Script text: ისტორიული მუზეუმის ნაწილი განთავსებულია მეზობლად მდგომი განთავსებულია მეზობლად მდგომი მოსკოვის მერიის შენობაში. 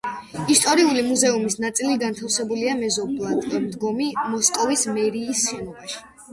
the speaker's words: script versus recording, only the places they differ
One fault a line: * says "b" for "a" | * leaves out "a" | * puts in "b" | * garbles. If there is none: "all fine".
* leaves out "განთავსებულია მეზობლად მდგომი"